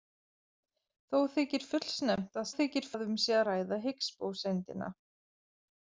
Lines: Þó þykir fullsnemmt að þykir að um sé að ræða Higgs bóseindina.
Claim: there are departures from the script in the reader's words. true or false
false